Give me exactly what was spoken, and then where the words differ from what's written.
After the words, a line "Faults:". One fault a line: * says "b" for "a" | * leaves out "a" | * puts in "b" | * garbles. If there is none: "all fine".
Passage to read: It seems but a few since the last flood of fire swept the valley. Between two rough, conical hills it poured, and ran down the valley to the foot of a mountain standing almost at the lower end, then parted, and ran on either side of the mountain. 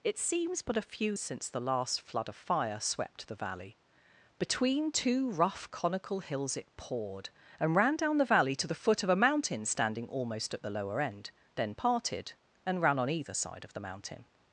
It seems but a few since the last flood of fire swept the valley. Between two rough, conical hills it poured, and ran down the valley to the foot of a mountain standing almost at the lower end, then parted, and ran on either side of the mountain.
Faults:
all fine